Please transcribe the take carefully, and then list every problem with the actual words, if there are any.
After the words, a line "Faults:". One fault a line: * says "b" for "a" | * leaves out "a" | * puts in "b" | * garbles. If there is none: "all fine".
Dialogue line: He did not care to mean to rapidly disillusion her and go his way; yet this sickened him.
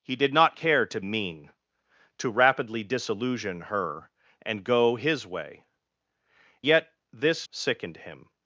He did not care to mean to rapidly disillusion her and go his way; yet this sickened him.
Faults:
all fine